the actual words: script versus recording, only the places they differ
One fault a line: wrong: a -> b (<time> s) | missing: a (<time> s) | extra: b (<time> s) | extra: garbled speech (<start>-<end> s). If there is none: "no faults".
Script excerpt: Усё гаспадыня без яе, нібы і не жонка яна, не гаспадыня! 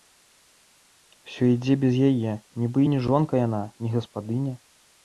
wrong: гаспадыня -> ідзе (1.6 s)